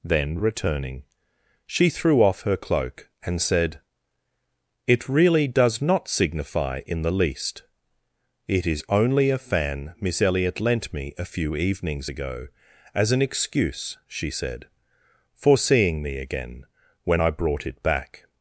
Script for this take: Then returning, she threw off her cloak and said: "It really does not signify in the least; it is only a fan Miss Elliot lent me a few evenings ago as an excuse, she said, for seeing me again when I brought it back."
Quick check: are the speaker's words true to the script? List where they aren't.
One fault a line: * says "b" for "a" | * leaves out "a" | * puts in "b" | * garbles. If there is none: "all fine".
all fine